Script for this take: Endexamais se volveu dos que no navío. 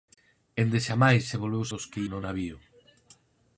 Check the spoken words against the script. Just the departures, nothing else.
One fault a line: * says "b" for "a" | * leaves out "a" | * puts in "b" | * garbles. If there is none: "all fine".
all fine